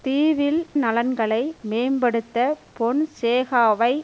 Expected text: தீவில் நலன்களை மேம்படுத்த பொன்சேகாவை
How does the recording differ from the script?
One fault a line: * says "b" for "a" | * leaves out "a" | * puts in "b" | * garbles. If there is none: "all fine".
all fine